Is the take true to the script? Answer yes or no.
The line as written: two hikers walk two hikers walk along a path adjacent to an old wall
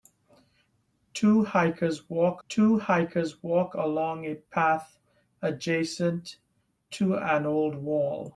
yes